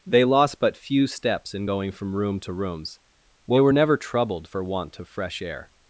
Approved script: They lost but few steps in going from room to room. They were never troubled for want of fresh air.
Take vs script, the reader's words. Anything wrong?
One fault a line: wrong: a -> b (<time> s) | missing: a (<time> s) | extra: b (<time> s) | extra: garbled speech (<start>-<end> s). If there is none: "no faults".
wrong: room -> rooms (2.5 s)